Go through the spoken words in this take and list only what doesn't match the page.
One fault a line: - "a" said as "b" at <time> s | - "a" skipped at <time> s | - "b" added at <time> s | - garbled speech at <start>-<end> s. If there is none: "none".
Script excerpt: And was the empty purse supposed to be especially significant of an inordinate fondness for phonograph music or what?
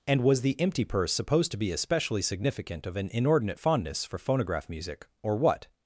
none